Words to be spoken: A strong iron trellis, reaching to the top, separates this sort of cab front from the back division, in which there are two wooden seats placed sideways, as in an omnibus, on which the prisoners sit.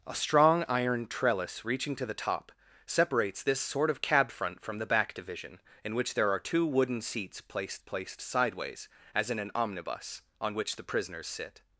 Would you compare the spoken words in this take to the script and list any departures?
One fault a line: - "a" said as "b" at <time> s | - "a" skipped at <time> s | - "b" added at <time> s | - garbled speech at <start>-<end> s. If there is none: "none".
- "placed" added at 7.8 s